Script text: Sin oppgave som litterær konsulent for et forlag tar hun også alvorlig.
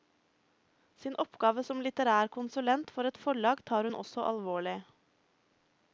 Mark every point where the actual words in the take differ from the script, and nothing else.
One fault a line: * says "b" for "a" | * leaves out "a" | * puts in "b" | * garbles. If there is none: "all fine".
all fine